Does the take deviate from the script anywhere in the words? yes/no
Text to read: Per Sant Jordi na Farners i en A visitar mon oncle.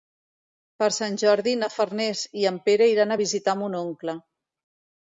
yes